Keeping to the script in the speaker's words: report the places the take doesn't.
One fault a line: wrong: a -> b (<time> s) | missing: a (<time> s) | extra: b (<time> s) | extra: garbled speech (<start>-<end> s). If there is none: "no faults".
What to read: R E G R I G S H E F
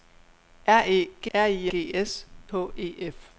no faults